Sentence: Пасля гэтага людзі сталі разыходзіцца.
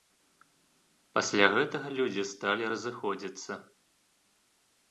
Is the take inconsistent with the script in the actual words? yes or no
no